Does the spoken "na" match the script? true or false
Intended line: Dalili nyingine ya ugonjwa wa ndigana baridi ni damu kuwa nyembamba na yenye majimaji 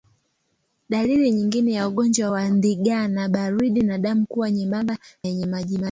false